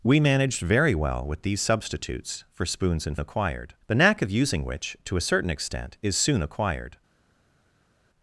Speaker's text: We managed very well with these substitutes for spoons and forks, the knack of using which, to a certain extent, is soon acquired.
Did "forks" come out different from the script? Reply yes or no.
yes